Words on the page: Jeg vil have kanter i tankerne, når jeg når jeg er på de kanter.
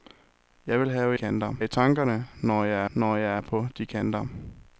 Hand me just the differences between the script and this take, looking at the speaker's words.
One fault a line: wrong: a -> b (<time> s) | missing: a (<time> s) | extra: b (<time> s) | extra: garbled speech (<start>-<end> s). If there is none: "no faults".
no faults